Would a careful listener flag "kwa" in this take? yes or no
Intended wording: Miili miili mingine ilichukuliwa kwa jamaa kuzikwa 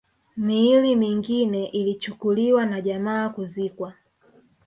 yes